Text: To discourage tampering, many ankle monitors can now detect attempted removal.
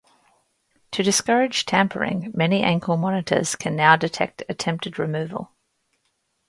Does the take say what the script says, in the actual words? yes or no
yes